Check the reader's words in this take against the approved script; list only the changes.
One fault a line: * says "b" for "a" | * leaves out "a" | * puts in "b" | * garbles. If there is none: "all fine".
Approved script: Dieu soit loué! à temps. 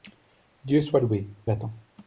all fine